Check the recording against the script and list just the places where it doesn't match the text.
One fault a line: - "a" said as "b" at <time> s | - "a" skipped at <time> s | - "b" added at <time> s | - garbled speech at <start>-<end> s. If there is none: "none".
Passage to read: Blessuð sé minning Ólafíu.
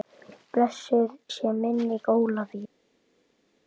none